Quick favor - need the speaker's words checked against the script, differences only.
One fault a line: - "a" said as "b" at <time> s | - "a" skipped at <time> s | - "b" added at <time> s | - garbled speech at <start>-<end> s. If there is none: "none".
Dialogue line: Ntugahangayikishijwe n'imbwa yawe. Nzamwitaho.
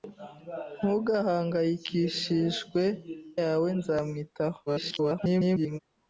- "n'imbwa" skipped at 2.8 s
- garbled speech at 4.7-5.8 s